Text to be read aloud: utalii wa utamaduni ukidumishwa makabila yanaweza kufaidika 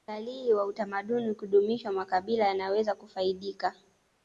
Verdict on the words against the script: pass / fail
pass